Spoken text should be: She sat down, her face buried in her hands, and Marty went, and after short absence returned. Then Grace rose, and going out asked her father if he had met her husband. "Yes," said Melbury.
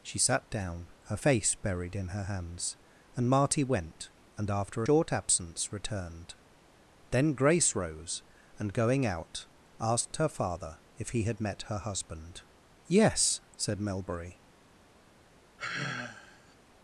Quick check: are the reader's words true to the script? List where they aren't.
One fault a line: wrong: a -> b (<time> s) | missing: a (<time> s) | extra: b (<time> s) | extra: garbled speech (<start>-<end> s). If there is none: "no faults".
no faults